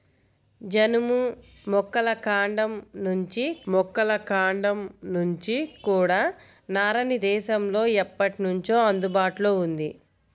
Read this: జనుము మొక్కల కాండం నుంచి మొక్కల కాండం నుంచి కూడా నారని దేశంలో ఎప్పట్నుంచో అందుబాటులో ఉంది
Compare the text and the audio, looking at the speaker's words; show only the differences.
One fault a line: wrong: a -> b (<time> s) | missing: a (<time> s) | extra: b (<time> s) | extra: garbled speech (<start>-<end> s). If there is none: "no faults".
no faults